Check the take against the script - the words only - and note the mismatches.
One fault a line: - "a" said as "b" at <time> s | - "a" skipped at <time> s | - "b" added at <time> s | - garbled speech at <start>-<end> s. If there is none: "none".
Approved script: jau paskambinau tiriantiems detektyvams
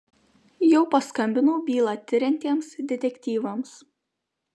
- "bylą" added at 1.7 s